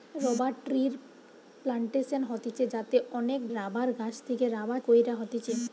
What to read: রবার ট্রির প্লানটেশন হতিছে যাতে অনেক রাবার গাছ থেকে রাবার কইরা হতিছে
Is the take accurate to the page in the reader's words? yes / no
yes